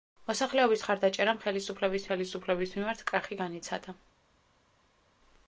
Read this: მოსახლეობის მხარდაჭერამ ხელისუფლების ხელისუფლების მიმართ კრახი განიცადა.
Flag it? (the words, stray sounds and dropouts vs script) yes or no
no